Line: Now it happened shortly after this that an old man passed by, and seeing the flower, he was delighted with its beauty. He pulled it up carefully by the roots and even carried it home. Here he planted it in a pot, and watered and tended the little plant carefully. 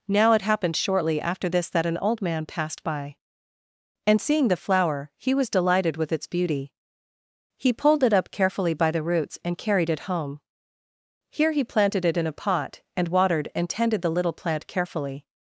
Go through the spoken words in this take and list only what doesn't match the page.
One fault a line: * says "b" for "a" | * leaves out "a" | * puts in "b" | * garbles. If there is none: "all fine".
* leaves out "even"